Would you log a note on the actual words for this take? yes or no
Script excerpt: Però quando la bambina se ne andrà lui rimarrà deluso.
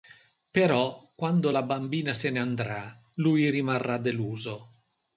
no